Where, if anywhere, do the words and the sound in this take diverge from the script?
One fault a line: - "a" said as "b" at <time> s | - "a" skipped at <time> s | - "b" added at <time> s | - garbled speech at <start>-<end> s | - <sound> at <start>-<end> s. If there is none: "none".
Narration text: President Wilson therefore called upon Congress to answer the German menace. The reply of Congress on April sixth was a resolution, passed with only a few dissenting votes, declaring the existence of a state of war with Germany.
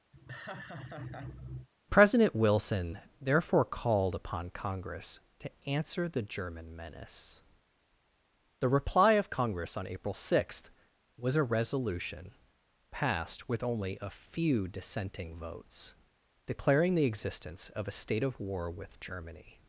- laugh at 0.1-1.7 s